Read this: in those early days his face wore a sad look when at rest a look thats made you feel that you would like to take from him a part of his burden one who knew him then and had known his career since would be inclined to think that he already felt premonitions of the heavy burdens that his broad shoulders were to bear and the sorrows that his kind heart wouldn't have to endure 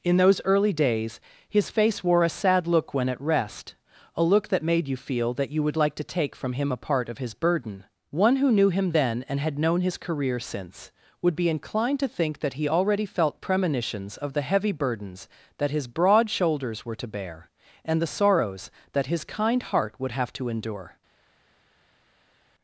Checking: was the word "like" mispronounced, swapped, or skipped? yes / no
no